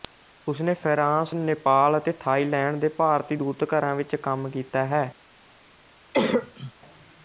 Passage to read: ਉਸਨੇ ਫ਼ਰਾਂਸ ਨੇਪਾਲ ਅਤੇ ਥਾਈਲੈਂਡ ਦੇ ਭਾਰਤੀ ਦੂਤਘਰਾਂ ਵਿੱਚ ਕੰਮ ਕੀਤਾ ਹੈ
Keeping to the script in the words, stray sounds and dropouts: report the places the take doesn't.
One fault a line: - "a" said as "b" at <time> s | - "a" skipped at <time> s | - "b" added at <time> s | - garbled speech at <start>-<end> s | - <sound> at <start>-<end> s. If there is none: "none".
- cough at 6.1-6.7 s